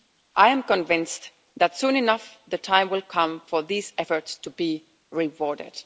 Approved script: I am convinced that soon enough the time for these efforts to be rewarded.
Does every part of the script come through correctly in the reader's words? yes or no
no